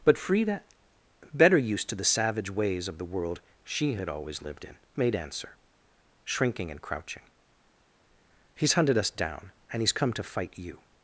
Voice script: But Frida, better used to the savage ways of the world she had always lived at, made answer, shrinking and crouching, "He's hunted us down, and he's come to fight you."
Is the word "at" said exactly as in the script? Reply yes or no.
no